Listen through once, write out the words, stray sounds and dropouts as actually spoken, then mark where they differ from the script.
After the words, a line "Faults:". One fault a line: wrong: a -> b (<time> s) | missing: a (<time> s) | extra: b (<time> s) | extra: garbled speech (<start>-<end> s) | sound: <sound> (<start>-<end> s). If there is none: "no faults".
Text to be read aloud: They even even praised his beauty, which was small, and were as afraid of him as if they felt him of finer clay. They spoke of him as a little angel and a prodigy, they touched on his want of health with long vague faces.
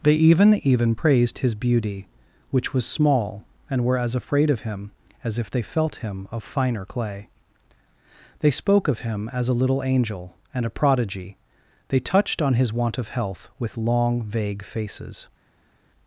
They even even praised his beauty, which was small, and were as afraid of him as if they felt him of finer clay. They spoke of him as a little angel and a prodigy, they touched on his want of health with long vague faces.
Faults:
no faults